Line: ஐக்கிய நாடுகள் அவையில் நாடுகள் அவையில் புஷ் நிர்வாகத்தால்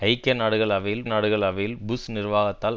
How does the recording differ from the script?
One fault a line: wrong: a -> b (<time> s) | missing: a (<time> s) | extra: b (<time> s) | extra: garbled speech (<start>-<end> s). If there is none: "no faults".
no faults